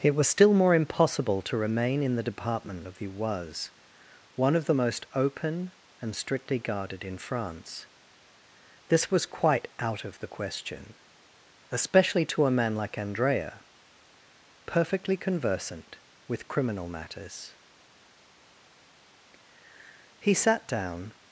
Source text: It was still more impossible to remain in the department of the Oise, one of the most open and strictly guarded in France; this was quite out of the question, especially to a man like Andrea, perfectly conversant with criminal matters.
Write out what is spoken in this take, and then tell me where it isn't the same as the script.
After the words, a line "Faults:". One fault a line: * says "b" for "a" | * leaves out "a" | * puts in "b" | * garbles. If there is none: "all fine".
It was still more impossible to remain in the department of the Oise, one of the most open and strictly guarded in France; this was quite out of the question, especially to a man like Andrea, perfectly conversant with criminal matters. He sat down
Faults:
* puts in "He sat down"